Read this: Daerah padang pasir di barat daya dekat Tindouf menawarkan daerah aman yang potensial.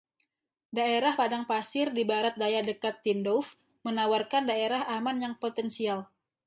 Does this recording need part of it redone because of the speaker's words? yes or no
no